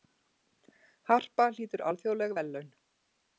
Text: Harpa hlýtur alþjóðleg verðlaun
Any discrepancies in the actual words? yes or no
no